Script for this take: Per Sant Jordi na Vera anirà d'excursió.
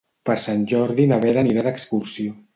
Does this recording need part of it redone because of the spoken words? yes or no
no